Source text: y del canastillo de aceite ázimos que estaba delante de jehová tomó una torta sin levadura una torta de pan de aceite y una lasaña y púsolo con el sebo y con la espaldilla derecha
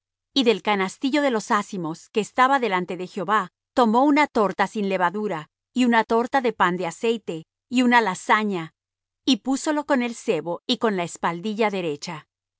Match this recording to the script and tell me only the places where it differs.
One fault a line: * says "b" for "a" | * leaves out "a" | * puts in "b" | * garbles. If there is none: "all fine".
* says "los" for "aceite"
* puts in "y"